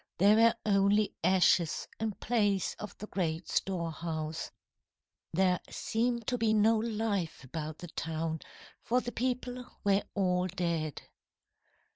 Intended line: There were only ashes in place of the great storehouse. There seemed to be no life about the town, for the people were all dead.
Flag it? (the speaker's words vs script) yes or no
no